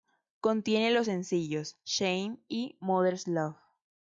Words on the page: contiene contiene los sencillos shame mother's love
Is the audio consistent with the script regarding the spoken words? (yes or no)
no